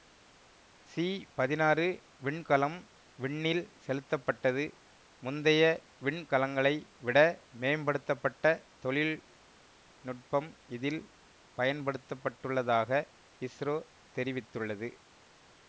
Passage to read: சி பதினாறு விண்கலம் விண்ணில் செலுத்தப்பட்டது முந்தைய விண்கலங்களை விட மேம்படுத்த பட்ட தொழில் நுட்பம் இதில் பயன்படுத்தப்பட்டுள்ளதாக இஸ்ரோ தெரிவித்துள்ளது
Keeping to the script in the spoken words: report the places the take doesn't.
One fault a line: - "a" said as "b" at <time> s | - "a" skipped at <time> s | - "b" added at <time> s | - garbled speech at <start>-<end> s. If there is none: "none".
none